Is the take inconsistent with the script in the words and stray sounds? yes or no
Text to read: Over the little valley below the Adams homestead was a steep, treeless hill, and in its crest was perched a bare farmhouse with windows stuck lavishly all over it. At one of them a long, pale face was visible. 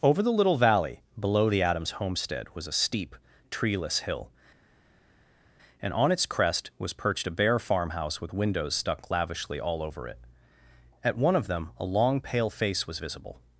yes